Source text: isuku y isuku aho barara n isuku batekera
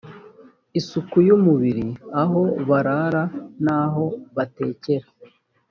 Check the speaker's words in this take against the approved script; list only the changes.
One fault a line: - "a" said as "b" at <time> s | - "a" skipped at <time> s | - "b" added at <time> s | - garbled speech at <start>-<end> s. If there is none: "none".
- "isuku" said as "umubiri" at 1.4 s
- "isuku" said as "aho" at 3.8 s